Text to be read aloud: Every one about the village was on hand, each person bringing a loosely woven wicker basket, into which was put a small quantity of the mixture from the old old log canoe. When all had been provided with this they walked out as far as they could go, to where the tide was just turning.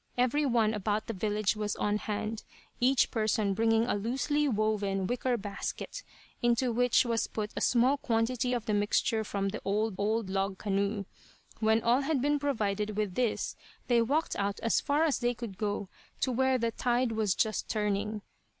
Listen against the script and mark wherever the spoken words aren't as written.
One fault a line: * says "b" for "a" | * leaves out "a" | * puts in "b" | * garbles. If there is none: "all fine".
all fine